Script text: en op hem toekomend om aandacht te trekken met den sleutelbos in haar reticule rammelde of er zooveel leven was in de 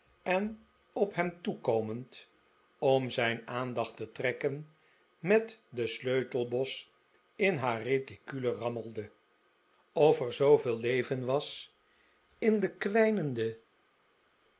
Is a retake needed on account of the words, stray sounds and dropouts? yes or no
yes